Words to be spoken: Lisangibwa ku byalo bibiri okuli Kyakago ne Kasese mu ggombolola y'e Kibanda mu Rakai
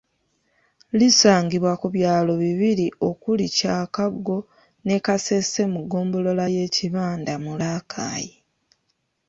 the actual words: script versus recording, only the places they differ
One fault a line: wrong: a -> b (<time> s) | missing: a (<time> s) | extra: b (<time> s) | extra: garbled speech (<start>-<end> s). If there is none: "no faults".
no faults